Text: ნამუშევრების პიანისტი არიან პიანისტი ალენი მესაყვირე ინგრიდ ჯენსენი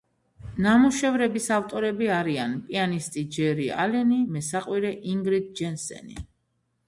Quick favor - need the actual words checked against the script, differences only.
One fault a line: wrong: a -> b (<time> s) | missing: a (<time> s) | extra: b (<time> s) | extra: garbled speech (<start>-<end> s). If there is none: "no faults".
wrong: პიანისტი -> ავტორები (1.6 s)
extra: ჯერი (3.4 s)